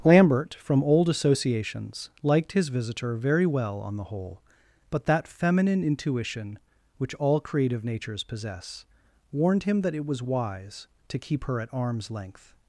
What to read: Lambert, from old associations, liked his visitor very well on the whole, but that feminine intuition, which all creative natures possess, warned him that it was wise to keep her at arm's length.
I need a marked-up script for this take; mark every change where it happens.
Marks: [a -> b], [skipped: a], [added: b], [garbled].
Lambert, from old associations, liked his visitor very well on the whole, but that feminine intuition, which all creative natures possess, warned him that it was wise to keep her at arm's length.